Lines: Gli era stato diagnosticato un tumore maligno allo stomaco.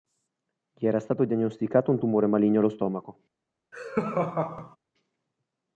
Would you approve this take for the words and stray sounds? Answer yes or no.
no